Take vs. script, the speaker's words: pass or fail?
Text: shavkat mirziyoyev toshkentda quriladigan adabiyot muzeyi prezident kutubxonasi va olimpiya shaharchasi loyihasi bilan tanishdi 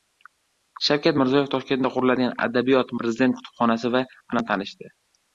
fail